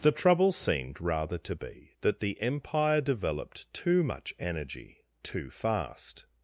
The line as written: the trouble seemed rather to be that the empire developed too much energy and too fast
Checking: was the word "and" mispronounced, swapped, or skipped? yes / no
yes